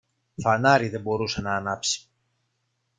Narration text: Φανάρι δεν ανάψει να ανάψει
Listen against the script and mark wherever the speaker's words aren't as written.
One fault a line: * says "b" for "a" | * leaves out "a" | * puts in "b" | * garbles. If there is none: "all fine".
* says "μπορούσε" for "ανάψει"